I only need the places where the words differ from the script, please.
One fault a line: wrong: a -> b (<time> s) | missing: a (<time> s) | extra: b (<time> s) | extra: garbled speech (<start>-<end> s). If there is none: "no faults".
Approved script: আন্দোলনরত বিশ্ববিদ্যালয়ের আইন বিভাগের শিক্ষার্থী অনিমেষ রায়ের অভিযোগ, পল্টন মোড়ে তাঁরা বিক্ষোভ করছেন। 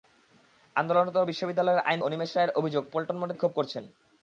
missing: বিভাগের শিক্ষার্থী (2.0 s)
missing: তাঁরা (3.3 s)